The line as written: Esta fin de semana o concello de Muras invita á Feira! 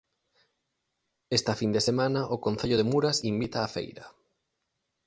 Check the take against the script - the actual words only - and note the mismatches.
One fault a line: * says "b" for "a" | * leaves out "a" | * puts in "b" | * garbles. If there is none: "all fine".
all fine